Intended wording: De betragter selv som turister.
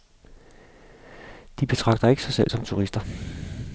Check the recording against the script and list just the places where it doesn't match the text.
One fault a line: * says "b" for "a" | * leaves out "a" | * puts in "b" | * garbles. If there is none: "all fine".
* puts in "ikke sig"